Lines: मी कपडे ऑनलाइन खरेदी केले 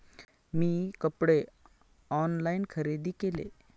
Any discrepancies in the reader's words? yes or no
no